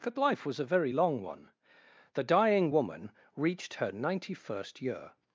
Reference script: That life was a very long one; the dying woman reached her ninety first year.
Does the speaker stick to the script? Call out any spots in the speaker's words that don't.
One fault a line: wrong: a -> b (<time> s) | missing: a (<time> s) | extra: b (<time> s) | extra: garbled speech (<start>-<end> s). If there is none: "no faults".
no faults